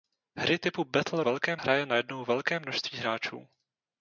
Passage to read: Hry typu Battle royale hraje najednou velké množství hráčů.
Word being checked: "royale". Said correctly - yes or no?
no